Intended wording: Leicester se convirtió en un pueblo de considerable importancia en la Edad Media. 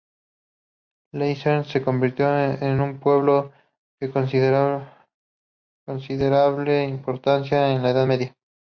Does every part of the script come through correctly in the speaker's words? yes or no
yes